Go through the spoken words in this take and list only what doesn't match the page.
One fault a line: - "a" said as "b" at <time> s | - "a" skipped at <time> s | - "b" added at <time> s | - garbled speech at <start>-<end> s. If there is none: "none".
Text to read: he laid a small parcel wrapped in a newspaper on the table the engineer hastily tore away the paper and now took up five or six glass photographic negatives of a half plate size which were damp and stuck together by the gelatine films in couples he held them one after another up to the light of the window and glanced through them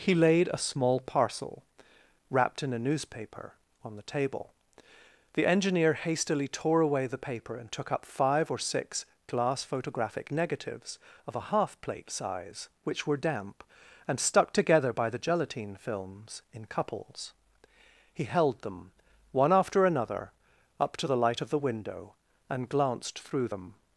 - "now" skipped at 7.7 s